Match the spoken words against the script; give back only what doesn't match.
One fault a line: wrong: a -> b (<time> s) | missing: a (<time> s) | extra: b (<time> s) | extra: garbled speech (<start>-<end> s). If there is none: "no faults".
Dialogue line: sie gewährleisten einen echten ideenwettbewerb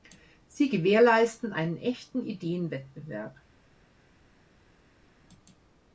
no faults